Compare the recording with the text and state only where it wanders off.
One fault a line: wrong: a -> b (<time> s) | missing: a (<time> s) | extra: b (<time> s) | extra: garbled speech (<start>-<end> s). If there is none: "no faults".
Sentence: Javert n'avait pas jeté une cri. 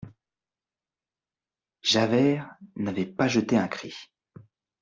wrong: une -> un (3.5 s)